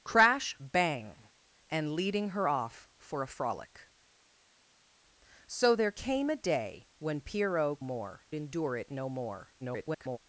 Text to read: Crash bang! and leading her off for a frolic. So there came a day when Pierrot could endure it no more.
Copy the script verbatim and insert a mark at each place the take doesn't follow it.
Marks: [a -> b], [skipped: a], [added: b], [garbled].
Crash bang! and leading her off for a frolic. So there came a day when Pierrot [could -> more] endure it no more. [garbled]